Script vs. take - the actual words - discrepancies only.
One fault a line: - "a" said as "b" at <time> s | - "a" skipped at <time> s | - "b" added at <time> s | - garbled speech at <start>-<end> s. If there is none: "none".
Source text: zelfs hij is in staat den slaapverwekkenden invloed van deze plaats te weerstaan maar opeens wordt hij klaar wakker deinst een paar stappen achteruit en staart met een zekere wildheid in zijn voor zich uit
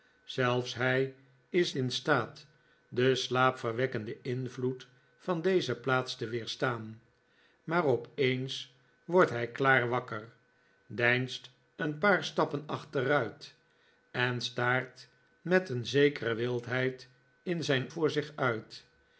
none